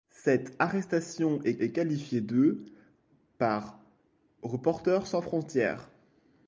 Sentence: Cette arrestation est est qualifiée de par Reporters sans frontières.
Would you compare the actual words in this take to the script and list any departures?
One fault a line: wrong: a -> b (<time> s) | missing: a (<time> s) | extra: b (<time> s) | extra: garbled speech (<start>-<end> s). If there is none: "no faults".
no faults